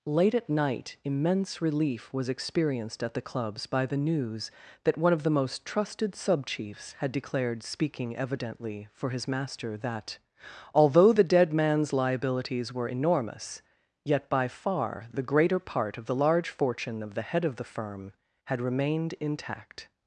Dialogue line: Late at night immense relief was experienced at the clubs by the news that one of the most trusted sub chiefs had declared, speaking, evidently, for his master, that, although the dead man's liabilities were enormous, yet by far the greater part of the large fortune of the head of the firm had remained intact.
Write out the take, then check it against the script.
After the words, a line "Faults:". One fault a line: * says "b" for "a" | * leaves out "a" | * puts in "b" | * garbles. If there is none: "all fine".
Late at night immense relief was experienced at the clubs by the news that one of the most trusted sub chiefs had declared, speaking, evidently, for his master, that, although the dead man's liabilities were enormous, yet by far the greater part of the large fortune of the head of the firm had remained intact.
Faults:
all fine